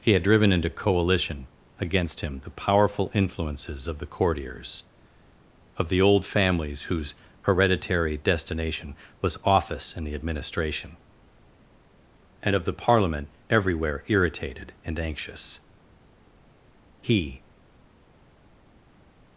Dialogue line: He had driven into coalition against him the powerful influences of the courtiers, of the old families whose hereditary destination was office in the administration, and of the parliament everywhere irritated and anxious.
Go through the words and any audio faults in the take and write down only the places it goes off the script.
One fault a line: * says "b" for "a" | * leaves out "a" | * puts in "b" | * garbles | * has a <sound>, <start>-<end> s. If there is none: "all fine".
* puts in "He"